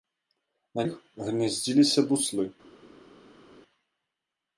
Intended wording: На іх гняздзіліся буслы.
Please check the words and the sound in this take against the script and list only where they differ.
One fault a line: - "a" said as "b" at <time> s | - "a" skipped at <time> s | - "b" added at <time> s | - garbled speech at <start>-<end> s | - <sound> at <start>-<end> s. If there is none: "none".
none